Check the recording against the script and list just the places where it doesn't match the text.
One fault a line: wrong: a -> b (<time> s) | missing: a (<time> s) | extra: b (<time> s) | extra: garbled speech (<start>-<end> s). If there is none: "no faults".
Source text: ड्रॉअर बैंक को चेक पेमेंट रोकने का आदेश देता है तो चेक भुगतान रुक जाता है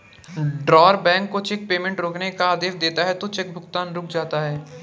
no faults